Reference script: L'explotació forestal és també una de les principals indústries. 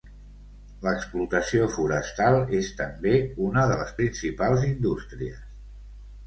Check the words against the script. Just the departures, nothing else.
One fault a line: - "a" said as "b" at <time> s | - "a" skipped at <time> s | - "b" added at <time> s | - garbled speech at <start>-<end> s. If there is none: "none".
none